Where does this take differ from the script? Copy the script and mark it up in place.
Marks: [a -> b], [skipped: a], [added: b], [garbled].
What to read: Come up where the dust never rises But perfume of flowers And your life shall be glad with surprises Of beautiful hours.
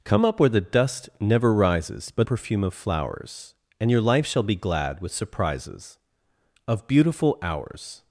Come up where the dust never rises But perfume of flowers And your life shall be glad with surprises Of beautiful hours.